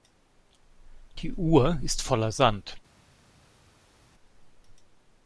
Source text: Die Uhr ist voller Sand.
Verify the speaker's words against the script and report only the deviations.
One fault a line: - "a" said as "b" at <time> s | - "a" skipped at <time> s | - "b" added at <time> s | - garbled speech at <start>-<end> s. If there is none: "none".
none